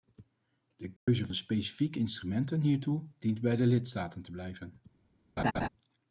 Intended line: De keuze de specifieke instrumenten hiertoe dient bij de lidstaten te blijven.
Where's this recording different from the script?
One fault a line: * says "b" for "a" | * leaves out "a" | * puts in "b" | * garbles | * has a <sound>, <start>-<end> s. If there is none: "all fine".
* has a dropout, 1.0-1.1 s
* has a laugh, 5.4-5.7 s